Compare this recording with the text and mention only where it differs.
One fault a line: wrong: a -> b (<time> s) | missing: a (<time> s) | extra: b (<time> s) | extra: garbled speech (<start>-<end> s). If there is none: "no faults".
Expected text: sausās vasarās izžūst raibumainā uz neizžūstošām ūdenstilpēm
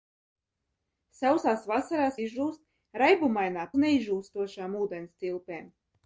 no faults